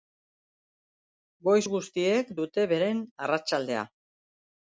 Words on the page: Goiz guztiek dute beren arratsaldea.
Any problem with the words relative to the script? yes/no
no